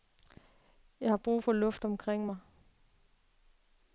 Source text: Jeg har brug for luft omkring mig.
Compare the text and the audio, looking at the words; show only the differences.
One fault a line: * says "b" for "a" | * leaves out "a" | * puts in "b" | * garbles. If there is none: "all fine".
all fine